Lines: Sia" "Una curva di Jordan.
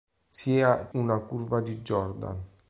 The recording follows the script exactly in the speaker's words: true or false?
true